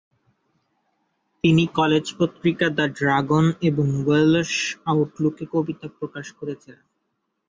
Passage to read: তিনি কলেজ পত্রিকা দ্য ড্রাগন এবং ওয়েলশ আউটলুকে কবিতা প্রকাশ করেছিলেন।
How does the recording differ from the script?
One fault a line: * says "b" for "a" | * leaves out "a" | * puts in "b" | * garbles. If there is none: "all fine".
all fine